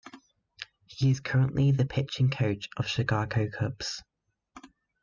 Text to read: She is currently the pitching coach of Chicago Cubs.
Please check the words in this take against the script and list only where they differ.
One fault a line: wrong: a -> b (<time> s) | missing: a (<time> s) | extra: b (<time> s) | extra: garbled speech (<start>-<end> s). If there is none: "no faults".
wrong: She -> He (0.9 s)